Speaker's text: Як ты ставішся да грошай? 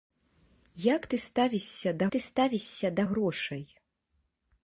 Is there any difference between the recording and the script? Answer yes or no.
yes